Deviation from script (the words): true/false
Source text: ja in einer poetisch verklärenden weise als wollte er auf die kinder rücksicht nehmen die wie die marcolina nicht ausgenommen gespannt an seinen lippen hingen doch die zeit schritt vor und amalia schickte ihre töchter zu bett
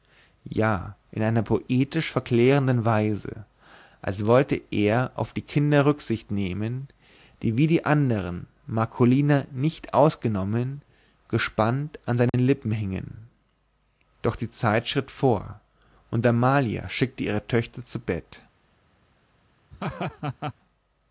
true